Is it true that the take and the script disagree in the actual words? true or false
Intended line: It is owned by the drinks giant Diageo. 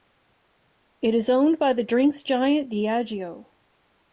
false